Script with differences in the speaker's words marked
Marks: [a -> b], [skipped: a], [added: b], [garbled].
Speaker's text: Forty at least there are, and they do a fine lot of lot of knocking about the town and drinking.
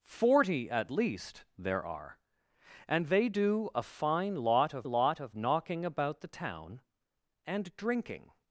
Forty at least there are, and they do a fine lot of lot of knocking about the town and drinking.